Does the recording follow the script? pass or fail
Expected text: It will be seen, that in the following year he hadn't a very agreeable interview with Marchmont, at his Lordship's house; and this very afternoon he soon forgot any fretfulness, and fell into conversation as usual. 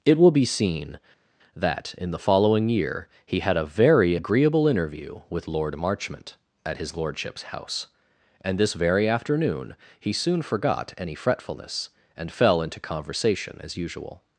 fail